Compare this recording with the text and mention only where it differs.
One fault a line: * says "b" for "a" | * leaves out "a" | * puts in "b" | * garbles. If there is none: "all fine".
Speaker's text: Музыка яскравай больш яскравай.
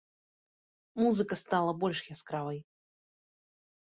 * says "стала" for "яскравай"